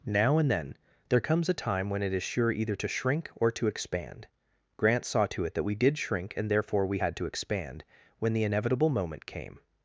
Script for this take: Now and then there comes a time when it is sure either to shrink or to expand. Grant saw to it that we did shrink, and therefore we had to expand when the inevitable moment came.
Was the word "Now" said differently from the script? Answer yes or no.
no